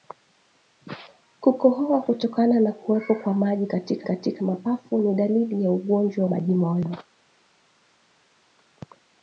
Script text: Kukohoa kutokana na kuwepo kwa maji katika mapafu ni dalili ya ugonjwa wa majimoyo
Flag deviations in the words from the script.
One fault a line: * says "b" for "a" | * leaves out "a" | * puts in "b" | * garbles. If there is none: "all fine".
* puts in "katika"
* leaves out "wa"